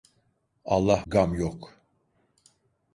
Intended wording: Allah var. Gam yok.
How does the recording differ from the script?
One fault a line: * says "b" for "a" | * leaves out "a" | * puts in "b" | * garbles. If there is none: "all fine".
* leaves out "var"